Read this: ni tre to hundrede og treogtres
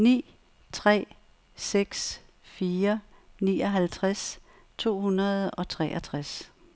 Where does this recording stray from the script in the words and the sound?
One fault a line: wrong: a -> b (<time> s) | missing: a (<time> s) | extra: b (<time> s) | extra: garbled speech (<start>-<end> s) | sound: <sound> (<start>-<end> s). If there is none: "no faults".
extra: seks fire nioghalvtreds (1.6 s)